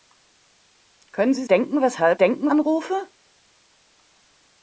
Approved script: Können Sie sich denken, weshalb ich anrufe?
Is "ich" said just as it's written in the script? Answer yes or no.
no